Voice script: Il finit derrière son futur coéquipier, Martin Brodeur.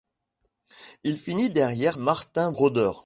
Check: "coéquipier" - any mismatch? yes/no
yes